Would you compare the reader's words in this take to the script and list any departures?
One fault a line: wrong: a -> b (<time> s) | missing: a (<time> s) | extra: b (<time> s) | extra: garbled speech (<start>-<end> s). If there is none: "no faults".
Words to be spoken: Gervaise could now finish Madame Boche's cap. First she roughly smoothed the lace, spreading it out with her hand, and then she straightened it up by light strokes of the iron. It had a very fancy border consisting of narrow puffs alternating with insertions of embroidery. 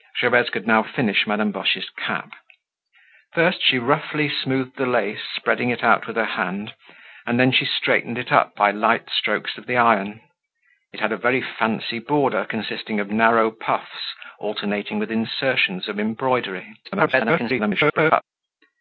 extra: garbled speech (16.8-18.2 s)